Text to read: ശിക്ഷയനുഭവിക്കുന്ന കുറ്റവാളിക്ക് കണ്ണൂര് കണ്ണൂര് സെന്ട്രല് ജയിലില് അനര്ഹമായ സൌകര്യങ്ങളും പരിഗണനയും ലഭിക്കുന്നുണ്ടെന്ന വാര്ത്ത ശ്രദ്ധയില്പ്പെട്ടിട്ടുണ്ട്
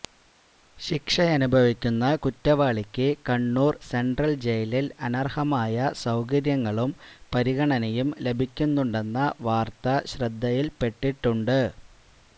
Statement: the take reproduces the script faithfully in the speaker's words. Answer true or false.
false